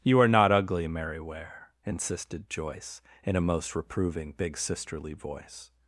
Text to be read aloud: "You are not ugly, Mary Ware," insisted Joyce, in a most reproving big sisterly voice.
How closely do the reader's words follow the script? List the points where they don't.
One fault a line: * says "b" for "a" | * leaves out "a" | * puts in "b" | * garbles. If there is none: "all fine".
all fine